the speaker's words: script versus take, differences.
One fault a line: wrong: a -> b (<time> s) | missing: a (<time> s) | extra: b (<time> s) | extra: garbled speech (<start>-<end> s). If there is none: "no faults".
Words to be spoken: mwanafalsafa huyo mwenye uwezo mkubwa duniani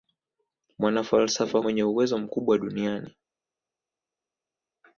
missing: huyo (1.6 s)